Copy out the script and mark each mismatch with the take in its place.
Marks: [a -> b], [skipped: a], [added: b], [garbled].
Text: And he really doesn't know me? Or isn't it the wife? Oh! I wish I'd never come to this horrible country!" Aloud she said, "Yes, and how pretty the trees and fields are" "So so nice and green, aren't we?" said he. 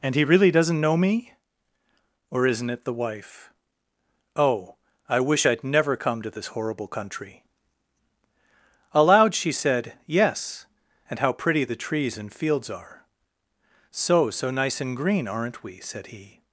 And he really doesn't know me? Or isn't it the wife? Oh! I wish I'd never come to this horrible country!" Aloud she said, "Yes, and how pretty the trees and fields are" "So so nice and green, aren't we?" said he.